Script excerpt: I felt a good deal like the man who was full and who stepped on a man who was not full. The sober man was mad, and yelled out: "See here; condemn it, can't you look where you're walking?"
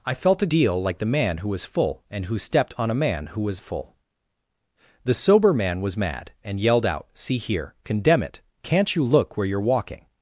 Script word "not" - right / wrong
wrong